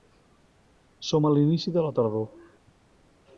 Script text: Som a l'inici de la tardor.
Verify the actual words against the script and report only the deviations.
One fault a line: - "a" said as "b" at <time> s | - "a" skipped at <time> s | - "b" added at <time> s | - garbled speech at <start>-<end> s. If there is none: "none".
none